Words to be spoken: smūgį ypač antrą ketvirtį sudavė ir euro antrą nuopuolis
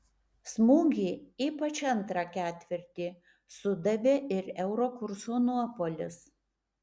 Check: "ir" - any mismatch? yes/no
no